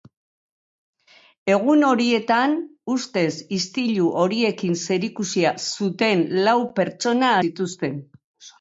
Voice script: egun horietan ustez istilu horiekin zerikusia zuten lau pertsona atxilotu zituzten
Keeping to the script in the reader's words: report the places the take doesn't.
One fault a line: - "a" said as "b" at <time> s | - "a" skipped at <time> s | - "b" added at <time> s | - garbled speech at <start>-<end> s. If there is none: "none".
- "atxilotu" skipped at 7.3 s